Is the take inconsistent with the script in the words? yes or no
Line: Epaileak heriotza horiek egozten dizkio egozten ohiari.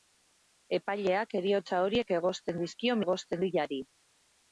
no